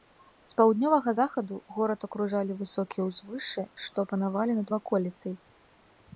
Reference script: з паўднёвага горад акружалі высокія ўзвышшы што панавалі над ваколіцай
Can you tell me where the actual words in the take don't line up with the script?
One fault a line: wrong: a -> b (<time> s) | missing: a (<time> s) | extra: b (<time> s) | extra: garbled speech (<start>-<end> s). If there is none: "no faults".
extra: захаду (1.1 s)